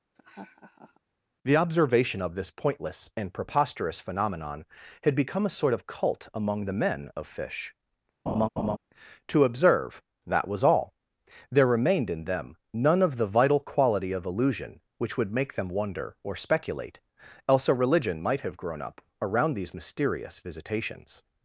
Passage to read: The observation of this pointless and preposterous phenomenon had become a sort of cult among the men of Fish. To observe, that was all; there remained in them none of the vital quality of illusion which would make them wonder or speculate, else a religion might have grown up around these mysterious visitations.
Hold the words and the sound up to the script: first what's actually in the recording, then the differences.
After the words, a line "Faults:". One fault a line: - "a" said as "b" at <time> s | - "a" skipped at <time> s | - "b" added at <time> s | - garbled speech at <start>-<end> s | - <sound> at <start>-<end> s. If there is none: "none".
The observation of this pointless and preposterous phenomenon had become a sort of cult among the men of Fish. To observe, that was all; there remained in them none of the vital quality of illusion which would make them wonder or speculate, else a religion might have grown up around these mysterious visitations.
Faults:
- laugh at 0.1-1.0 s
- laugh at 8.3-8.8 s